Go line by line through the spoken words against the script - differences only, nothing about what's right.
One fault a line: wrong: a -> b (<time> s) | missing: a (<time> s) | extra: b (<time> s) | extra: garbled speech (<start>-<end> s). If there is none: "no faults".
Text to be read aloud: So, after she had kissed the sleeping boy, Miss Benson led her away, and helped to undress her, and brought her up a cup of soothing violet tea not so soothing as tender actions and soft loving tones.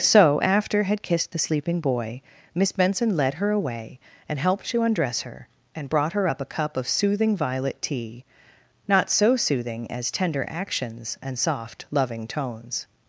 missing: she (0.8 s)